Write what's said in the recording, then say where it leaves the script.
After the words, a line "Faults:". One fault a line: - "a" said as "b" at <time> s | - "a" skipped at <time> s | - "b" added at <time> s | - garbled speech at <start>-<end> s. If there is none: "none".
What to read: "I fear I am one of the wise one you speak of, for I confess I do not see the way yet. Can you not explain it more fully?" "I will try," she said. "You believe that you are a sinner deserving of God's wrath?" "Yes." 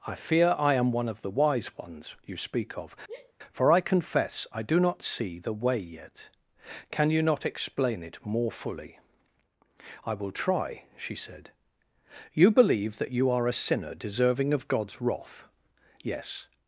"I fear I am one of the wise ones you speak of, for I confess I do not see the way yet. Can you not explain it more fully?" "I will try," she said. "You believe that you are a sinner deserving of God's wrath?" "Yes."
Faults:
- "one" said as "ones" at 1.8 s